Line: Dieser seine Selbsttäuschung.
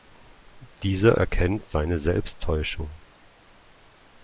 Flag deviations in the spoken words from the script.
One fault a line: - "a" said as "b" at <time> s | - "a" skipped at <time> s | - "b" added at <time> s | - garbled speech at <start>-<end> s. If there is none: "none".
- "erkennt" added at 1.2 s